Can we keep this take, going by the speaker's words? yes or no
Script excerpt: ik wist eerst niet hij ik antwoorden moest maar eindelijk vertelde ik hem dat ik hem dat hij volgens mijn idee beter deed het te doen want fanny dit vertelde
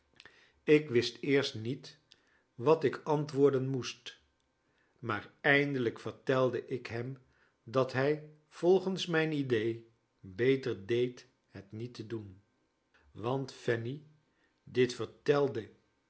no